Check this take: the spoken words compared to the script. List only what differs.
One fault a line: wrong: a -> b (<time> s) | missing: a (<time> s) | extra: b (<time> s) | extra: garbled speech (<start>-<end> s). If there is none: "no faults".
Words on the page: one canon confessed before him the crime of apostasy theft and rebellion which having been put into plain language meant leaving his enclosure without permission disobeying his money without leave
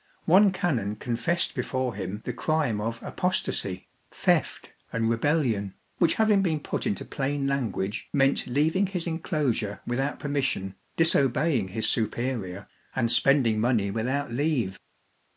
extra: superior and spending (11.9 s)